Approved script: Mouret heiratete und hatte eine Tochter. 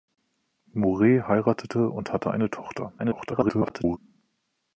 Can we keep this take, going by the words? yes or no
no